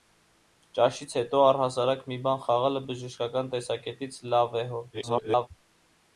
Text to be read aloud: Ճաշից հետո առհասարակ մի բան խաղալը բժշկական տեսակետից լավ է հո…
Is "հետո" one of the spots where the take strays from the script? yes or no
no